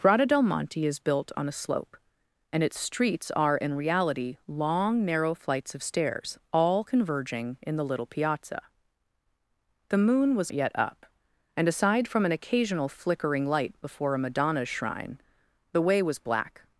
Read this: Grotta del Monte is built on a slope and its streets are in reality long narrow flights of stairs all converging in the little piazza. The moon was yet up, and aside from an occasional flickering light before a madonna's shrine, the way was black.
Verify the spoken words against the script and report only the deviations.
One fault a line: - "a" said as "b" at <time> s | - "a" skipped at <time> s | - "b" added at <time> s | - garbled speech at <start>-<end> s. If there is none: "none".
none